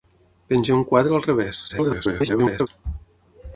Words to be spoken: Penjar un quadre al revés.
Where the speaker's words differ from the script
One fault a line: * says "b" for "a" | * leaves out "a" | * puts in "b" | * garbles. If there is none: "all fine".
* garbles